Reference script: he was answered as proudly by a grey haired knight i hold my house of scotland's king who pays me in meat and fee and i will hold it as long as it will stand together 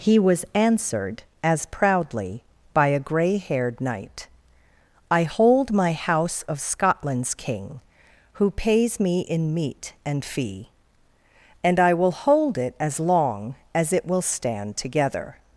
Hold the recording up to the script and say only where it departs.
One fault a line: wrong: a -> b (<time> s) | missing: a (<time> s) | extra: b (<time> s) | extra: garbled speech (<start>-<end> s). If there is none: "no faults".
no faults